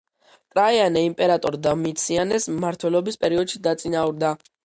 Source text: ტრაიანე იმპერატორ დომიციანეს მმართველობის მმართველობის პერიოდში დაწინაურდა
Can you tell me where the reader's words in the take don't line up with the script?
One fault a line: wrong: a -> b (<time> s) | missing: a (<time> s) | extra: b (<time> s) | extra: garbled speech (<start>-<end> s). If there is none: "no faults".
missing: მმართველობის (3.2 s)